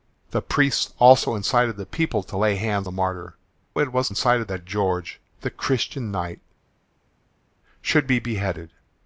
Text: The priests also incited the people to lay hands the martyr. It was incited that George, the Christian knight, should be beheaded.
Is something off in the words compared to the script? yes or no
no